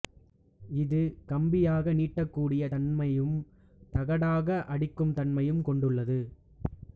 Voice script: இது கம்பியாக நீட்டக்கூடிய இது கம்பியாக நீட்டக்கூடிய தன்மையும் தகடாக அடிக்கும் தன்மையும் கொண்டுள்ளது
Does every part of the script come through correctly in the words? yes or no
no